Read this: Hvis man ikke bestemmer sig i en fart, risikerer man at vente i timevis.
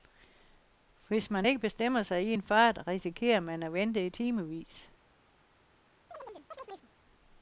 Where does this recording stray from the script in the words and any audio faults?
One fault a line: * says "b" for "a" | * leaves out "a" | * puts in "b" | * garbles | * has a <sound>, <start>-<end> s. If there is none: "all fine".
* has a chirp, 6.1-6.9 s